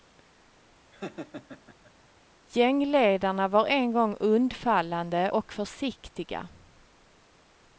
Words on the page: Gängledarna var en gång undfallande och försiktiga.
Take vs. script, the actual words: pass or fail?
pass